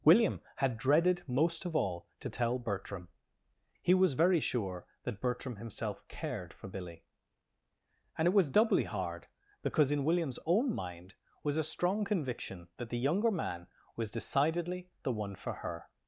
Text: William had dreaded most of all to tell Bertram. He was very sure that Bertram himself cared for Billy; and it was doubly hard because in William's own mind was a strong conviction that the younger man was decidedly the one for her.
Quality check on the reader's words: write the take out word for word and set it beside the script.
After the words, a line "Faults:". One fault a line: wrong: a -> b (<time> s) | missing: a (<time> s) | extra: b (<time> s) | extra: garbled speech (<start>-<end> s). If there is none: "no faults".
William had dreaded most of all to tell Bertram. He was very sure that Bertram himself cared for Billy; and it was doubly hard because in William's own mind was a strong conviction that the younger man was decidedly the one for her.
Faults:
no faults